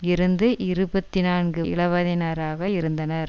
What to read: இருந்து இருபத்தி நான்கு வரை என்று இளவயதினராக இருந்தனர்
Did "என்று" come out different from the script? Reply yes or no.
yes